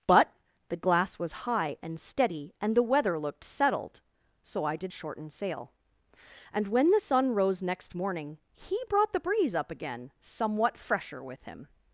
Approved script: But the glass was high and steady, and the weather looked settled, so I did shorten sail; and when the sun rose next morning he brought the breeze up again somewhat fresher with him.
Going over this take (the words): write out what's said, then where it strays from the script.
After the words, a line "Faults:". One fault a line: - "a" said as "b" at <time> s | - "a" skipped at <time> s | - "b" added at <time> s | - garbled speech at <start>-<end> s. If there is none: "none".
But the glass was high and steady, and the weather looked settled, so I did shorten sail; and when the sun rose next morning he brought the breeze up again somewhat fresher with him.
Faults:
none